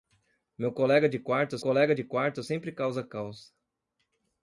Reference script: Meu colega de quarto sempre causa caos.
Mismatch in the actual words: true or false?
true